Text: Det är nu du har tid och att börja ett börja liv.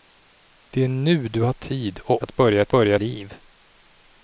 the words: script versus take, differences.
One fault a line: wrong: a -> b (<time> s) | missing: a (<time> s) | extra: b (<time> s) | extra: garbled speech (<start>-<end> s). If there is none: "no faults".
no faults